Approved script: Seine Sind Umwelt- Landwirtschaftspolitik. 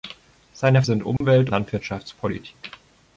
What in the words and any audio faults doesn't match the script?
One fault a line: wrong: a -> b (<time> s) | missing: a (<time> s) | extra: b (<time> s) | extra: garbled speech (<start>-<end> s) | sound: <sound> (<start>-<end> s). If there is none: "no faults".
sound: dropout (1.2-1.2 s)